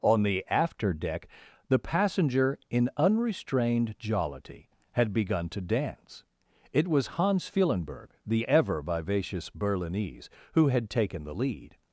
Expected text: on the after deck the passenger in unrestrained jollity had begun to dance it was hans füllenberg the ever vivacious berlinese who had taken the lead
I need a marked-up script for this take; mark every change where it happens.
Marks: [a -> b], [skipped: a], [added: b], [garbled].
on the after deck the passenger in unrestrained jollity had begun to dance it was hans füllenberg the ever vivacious berlinese who had taken the lead